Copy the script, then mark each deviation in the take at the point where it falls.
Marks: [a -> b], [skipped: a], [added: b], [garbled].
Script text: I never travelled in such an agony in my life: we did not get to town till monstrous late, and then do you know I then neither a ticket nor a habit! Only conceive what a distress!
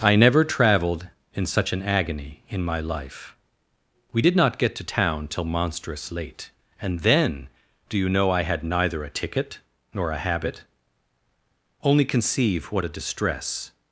I never travelled in such an agony in my life: we did not get to town till monstrous late, and then do you know I [then -> had] neither a ticket nor a habit! Only conceive what a distress!